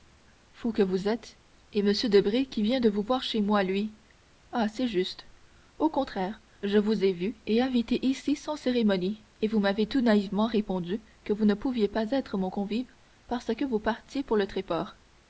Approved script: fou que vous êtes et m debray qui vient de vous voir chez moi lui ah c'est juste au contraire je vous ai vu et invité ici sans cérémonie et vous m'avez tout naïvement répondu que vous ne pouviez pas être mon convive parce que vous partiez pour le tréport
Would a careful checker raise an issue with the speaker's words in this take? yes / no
no